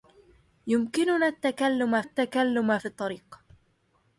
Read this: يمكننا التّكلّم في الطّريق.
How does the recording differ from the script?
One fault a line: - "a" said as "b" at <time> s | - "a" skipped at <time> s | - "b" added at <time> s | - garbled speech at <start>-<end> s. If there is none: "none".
- "التّكلّم" added at 2.0 s